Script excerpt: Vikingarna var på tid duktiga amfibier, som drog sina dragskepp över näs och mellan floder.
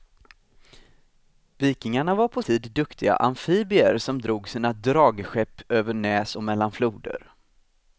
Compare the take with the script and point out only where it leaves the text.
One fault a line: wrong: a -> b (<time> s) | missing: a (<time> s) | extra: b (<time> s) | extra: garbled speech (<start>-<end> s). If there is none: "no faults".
no faults